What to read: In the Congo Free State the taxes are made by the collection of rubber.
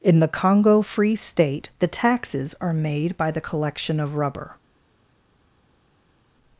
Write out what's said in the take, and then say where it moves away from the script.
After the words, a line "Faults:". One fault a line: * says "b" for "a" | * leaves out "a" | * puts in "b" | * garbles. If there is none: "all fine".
In the Congo Free State the taxes are made by the collection of rubber.
Faults:
all fine